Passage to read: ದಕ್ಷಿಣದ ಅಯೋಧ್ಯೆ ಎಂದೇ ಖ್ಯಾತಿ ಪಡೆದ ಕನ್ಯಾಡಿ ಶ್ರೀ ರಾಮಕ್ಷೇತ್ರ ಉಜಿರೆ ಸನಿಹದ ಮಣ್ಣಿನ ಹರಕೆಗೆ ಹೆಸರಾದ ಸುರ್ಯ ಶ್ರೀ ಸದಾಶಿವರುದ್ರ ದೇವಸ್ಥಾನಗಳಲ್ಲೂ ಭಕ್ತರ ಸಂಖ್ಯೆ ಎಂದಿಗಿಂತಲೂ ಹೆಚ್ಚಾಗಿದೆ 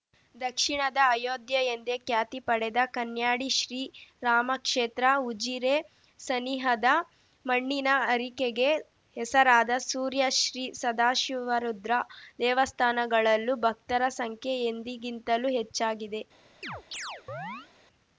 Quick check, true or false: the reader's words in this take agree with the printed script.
true